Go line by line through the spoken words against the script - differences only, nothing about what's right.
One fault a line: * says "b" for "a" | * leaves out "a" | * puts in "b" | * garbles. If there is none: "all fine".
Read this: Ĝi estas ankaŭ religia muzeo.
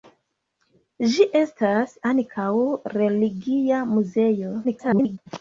* garbles